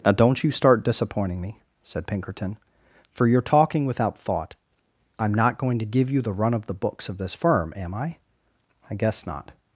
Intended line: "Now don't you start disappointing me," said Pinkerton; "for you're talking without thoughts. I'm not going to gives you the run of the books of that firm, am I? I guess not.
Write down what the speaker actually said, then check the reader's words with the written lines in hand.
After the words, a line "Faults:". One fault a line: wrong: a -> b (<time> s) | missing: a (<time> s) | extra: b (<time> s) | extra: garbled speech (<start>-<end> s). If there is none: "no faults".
"Now don't you start disappointing me," said Pinkerton; "for you're talking without thought. I'm not going to give you the run of the books of this firm, am I? I guess not.
Faults:
wrong: thoughts -> thought (4.2 s)
wrong: gives -> give (5.8 s)
wrong: that -> this (7.2 s)